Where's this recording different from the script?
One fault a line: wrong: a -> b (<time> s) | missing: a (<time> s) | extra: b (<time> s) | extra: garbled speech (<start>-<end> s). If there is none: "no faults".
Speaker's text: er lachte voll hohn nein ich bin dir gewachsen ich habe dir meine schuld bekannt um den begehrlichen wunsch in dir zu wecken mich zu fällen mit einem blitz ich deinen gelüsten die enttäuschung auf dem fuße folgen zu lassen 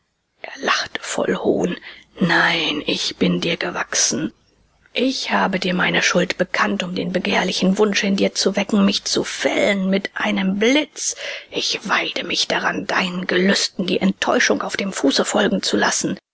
extra: weide mich daran (11.9 s)